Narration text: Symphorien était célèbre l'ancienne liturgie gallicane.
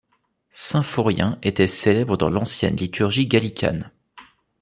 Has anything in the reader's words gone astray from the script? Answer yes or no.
yes